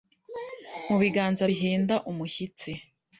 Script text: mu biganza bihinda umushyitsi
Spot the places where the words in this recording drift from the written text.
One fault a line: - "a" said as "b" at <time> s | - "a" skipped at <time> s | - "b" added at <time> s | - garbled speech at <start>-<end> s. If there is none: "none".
none